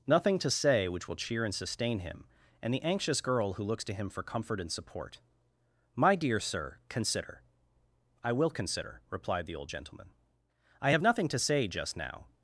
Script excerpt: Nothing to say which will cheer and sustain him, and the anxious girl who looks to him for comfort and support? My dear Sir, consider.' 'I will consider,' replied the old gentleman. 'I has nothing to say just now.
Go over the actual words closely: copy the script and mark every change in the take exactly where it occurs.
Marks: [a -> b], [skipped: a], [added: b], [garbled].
Nothing to say which will cheer and sustain him, and the anxious girl who looks to him for comfort and support? My dear Sir, consider.' 'I will consider,' replied the old gentleman. 'I [has -> have] nothing to say just now.